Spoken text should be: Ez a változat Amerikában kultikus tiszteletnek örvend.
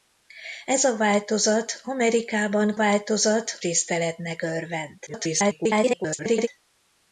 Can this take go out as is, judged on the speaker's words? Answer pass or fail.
fail